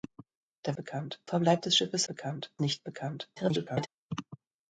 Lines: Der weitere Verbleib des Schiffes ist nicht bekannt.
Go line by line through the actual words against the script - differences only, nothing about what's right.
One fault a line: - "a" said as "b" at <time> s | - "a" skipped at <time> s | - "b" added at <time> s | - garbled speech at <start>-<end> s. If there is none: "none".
- "weitere" said as "bekannt" at 0.8 s
- "ist" said as "bekannt" at 2.1 s
- garbled speech at 3.4-3.9 s